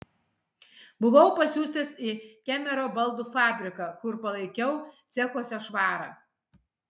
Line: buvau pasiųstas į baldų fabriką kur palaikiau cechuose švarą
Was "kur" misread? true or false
false